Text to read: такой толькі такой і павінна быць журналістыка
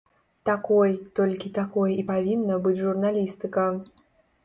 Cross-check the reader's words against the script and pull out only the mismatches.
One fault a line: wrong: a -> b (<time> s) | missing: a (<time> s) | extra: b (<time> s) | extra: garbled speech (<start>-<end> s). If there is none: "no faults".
no faults